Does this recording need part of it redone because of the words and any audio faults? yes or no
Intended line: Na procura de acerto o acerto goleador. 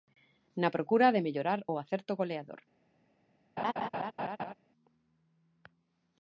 yes